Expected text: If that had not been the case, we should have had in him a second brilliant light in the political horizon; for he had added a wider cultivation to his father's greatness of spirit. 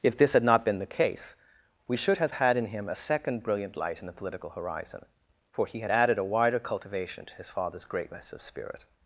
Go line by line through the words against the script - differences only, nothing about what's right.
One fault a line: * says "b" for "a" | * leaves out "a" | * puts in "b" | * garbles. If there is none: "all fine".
* says "this" for "that"